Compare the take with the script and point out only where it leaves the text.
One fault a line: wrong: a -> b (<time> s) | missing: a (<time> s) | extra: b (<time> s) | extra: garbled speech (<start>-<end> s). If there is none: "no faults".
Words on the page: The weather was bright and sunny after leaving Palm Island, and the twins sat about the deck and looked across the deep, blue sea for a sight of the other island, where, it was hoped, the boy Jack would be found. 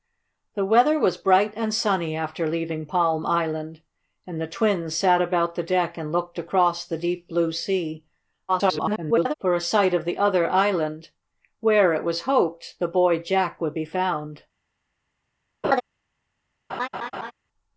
extra: garbled speech (8.5-9.3 s)